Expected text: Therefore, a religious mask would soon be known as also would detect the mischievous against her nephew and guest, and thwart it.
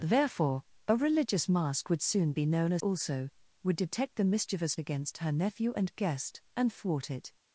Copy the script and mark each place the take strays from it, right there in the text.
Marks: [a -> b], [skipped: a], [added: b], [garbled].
Therefore, a religious mask would soon be known as also would detect the mischievous against her nephew and guest, and thwart it.